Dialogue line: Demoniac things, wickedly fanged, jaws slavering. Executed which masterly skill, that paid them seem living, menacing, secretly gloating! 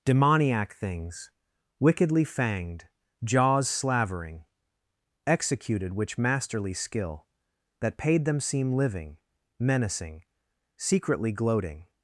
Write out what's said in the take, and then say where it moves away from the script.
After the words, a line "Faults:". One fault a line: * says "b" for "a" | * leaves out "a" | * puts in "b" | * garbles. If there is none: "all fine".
Demoniac things, wickedly fanged, jaws slavering. Executed which masterly skill, that paid them seem living, menacing, secretly gloating!
Faults:
all fine